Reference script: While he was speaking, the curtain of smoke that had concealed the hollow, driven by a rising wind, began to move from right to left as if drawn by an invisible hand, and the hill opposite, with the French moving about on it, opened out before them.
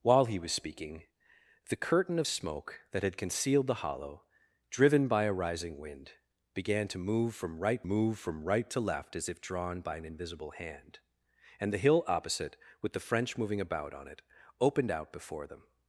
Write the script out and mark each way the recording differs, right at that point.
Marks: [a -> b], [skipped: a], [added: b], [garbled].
While he was speaking, the curtain of smoke that had concealed the hollow, driven by a rising wind, began to move from right [added: move from right] to left as if drawn by an invisible hand, and the hill opposite, with the French moving about on it, opened out before them.